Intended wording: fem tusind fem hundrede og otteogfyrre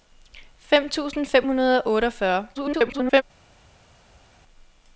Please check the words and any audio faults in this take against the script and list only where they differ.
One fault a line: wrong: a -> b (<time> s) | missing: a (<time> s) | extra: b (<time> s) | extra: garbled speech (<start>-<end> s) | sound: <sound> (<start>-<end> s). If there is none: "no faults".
extra: garbled speech (2.5-3.2 s)